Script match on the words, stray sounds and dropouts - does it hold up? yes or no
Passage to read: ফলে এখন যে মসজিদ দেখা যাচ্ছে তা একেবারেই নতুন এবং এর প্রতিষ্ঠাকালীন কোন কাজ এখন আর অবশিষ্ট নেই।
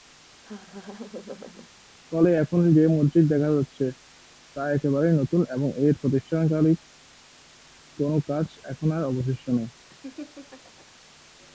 no